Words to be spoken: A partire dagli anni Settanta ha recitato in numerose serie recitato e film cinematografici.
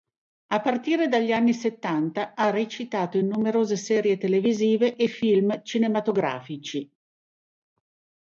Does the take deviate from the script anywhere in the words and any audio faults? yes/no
yes